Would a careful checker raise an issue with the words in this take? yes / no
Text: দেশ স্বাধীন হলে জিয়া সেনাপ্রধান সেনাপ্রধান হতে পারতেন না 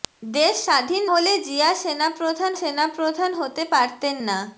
no